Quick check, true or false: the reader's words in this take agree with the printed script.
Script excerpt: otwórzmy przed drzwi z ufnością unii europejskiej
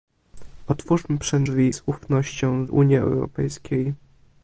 true